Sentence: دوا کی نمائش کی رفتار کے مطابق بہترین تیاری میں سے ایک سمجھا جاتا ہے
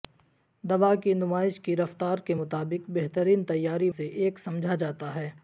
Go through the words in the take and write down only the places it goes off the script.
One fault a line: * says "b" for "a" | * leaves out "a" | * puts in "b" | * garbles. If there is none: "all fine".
* leaves out "میں"